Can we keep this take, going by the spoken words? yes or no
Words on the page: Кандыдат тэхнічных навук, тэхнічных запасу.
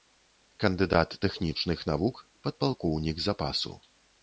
no